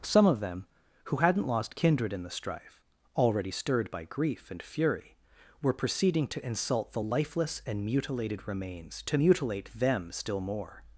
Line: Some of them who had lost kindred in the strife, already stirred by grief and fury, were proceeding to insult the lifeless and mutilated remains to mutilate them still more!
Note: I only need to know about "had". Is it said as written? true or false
false